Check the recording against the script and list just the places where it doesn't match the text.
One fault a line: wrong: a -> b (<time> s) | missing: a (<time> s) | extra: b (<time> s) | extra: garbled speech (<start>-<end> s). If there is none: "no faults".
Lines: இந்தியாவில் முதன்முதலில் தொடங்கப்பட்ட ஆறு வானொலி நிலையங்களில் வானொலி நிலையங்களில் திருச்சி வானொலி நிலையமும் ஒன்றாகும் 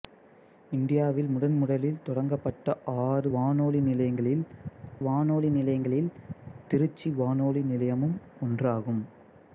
no faults